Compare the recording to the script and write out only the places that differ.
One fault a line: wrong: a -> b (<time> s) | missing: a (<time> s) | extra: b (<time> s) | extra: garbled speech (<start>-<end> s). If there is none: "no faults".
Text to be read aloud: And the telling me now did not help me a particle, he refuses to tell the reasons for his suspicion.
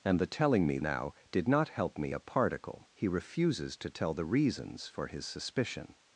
no faults